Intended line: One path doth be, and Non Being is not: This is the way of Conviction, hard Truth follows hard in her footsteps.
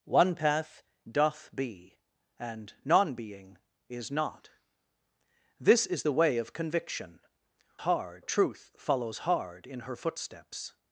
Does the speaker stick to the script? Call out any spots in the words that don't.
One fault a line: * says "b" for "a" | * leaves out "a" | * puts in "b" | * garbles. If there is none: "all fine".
all fine